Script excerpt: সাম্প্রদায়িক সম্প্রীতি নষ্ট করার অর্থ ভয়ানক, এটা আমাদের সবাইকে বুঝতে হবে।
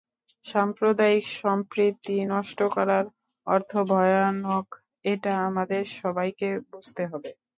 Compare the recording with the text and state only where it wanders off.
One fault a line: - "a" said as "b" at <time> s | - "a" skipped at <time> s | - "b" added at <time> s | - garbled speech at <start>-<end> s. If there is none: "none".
none